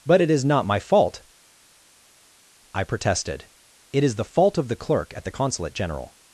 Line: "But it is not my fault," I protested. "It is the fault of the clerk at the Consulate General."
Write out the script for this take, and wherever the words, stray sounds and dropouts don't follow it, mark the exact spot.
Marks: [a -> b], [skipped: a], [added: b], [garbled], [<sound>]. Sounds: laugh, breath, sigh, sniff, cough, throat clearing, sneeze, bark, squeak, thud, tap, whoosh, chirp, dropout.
"But it is not my fault," I protested. "It is the fault of the clerk at the Consulate General."